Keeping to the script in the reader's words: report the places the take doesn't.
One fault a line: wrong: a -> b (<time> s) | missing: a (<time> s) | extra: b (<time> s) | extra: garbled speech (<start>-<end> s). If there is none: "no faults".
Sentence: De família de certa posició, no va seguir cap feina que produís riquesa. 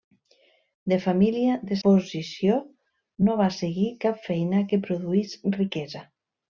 missing: certa (1.8 s)